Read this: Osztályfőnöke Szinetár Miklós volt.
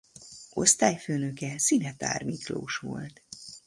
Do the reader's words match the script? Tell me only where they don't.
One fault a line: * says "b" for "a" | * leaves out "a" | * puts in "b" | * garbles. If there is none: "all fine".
all fine